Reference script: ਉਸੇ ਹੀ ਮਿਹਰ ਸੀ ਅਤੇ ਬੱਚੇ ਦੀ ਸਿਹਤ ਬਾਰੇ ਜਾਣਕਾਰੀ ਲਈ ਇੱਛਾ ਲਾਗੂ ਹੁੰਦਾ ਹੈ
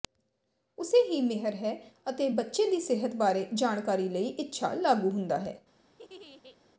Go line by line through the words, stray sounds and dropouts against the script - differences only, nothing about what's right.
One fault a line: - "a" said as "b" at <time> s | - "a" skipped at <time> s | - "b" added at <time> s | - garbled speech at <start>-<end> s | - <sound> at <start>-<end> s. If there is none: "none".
- "ਸੀ" said as "ਹੈ" at 1.6 s
- laugh at 5.9-6.6 s